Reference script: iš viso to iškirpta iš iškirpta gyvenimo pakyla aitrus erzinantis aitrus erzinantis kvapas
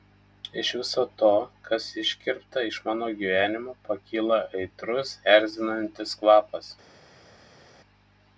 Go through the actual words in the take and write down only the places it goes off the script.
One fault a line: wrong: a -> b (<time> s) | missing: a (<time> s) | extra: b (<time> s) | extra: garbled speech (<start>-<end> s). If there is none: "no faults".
extra: kas (1.7 s)
wrong: iškirpta -> mano (2.9 s)
missing: aitrus erzinantis (6.2 s)